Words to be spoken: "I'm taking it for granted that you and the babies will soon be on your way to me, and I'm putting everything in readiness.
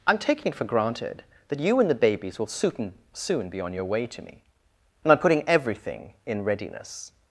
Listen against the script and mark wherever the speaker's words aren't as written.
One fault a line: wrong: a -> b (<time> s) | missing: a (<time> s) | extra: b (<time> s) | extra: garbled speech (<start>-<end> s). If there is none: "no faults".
extra: soon (3.1 s)